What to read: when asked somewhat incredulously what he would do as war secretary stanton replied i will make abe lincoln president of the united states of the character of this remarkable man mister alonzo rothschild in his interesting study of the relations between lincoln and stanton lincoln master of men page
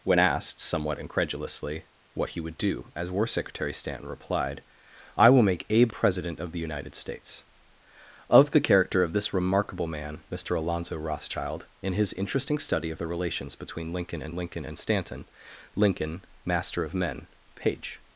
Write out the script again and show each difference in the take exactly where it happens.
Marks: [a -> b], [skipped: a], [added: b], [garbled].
when asked somewhat incredulously what he would do as war secretary stanton replied i will make abe [skipped: lincoln] president of the united states of the character of this remarkable man mister alonzo rothschild in his interesting study of the relations between lincoln and [added: lincoln and] stanton lincoln master of men page